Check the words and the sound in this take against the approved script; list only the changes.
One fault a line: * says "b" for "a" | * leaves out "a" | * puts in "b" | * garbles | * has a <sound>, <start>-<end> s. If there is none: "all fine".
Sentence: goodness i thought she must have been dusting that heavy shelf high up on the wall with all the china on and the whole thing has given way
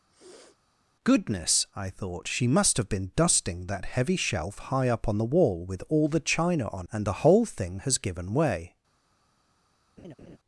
* has a sniff, 0.1-0.6 s
* has a laugh, 10.0-10.4 s